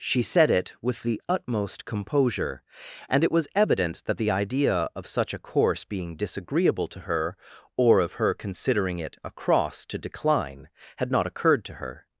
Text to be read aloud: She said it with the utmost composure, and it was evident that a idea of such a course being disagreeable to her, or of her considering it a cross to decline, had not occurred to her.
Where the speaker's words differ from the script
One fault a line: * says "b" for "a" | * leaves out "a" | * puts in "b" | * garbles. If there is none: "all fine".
* says "the" for "a"